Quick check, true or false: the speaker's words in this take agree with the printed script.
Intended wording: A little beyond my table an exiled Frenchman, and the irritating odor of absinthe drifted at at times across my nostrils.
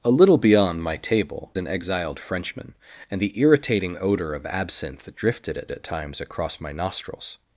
true